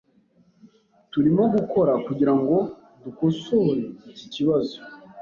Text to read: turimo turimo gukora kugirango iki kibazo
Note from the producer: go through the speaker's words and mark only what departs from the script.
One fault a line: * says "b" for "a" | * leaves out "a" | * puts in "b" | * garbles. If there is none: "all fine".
* leaves out "turimo"
* puts in "dukosore"